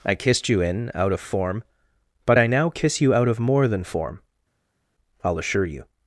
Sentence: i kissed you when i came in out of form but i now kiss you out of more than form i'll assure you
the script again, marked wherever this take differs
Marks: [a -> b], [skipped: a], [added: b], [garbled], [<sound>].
i kissed you [skipped: when i came] in out of form but i now kiss you out of more than form i'll assure you